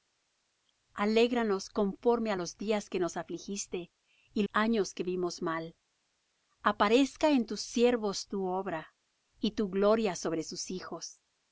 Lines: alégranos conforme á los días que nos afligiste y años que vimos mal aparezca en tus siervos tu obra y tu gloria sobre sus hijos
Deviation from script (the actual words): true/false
false